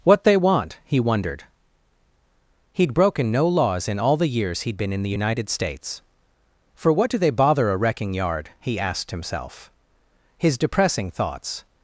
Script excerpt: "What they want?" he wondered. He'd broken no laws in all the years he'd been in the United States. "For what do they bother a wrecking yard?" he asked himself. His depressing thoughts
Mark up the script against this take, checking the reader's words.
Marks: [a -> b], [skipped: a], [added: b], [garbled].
"What they want?" he wondered. He'd broken no laws in all the years he'd been in the United States. "For what do they bother a wrecking yard?" he asked himself. His depressing thoughts